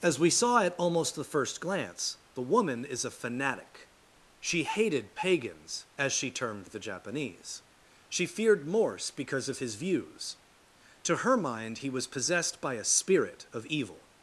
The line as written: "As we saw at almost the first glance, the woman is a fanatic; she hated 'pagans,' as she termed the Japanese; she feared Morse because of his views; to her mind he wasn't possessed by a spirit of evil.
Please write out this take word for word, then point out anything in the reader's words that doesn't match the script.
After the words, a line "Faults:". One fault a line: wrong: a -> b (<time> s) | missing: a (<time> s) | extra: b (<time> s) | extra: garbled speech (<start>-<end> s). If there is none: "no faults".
"As we saw at almost the first glance, the woman is a fanatic; she hated 'pagans,' as she termed the Japanese; she feared Morse because of his views; to her mind he was possessed by a spirit of evil.
Faults:
wrong: wasn't -> was (11.9 s)